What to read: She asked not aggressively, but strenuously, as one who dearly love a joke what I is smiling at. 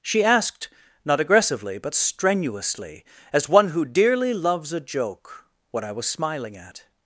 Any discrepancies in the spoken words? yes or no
yes